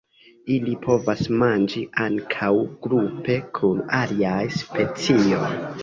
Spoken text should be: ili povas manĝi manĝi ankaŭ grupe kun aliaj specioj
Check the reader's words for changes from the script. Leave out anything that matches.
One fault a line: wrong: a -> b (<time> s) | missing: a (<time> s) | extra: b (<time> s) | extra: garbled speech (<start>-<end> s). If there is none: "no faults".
missing: manĝi (1.8 s)